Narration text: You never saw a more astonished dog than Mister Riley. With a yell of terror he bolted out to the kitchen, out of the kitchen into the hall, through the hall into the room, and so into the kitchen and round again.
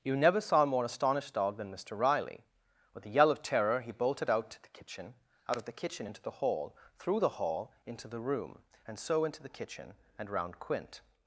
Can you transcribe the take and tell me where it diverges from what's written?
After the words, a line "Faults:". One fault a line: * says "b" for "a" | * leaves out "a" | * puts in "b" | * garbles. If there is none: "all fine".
You never saw a more astonished dog than Mister Riley. With a yell of terror he bolted out to the kitchen, out of the kitchen into the hall, through the hall into the room, and so into the kitchen and round quint.
Faults:
* says "quint" for "again"